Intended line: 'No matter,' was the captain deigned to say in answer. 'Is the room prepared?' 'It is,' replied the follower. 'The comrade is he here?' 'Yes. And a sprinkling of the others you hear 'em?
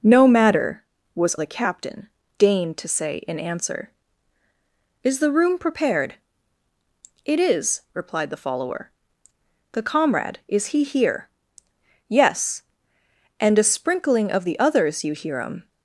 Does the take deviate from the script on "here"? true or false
false